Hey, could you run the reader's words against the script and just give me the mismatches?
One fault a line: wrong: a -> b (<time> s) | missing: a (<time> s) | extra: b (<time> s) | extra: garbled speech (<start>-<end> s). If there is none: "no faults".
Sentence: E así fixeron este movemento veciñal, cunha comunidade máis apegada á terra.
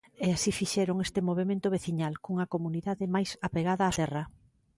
no faults